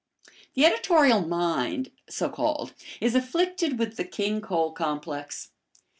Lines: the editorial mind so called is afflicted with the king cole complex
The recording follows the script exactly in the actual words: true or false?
true